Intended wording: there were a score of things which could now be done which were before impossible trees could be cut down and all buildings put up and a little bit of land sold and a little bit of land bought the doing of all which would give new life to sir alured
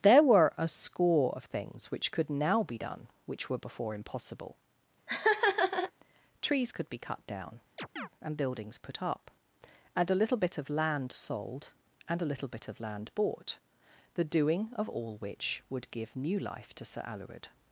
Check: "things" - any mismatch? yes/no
no